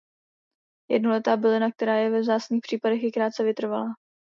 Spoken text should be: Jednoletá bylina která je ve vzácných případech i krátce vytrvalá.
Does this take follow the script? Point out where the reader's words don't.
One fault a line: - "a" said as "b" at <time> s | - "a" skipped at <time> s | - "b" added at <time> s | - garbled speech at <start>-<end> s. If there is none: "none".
none